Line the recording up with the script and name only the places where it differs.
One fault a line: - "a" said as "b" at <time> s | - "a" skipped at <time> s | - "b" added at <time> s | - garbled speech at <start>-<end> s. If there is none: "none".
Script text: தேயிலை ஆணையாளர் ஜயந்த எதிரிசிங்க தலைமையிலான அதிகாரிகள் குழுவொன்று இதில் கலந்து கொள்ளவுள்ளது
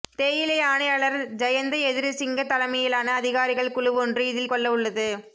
- "கலந்து" skipped at 4.5 s